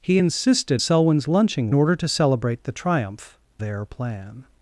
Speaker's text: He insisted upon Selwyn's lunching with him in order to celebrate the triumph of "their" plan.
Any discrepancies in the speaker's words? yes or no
yes